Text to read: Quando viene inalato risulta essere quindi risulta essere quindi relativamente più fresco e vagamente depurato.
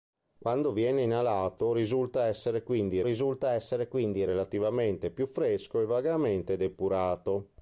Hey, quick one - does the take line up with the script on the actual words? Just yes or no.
yes